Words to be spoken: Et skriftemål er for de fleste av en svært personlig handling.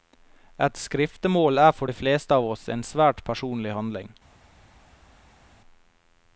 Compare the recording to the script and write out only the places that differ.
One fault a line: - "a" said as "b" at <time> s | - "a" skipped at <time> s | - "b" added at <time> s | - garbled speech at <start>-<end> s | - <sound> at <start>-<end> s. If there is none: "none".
- "oss" added at 2.5 s